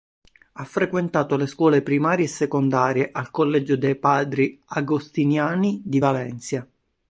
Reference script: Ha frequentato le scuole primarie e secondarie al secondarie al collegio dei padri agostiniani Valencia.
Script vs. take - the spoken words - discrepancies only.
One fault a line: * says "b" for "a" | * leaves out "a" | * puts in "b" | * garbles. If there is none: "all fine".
* leaves out "secondarie al"
* puts in "di"